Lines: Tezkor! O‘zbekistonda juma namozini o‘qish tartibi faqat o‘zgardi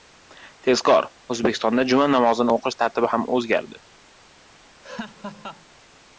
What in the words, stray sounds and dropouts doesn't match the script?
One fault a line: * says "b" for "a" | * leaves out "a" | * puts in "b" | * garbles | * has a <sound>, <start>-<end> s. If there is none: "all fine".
* says "ham" for "faqat"
* has a laugh, 4.8-5.6 s